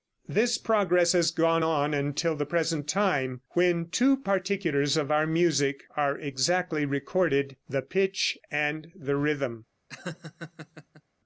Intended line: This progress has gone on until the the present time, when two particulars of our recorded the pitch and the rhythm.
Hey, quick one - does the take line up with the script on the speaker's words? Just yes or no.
no